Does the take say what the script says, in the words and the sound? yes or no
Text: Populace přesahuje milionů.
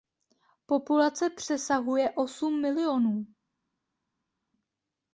no